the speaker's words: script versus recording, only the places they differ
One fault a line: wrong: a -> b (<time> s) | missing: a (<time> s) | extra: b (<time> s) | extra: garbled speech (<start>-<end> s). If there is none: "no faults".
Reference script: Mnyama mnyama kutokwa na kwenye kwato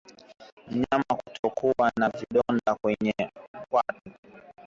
missing: mnyama (1.1 s)
extra: vidonda (2.1 s)